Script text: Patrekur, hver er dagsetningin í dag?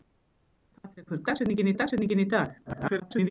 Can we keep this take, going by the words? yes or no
no